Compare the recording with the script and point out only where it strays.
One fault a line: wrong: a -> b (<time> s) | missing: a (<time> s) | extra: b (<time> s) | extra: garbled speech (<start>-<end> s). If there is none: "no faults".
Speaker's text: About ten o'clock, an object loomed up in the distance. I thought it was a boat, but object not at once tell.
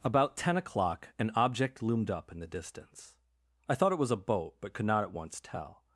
wrong: object -> could (4.7 s)